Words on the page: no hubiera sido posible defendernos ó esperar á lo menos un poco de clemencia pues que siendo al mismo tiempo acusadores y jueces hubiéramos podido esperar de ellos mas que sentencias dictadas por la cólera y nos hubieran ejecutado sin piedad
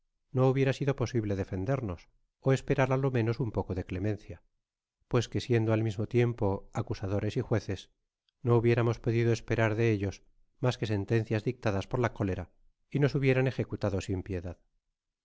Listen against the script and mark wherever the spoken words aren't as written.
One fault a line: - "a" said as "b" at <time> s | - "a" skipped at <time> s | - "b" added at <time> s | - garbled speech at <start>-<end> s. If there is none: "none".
- "no" added at 8.4 s